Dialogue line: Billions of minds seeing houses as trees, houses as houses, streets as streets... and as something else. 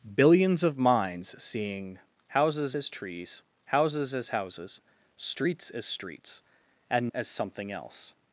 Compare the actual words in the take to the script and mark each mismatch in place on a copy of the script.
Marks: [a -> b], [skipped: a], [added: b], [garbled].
Billions of minds seeing houses as trees, houses as houses, streets as streets... and as something else.